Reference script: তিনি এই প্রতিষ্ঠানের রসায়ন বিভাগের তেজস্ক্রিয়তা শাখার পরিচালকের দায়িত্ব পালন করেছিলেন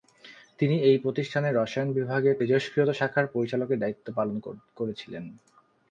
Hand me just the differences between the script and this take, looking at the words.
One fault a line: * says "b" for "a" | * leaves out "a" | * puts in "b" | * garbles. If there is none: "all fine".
all fine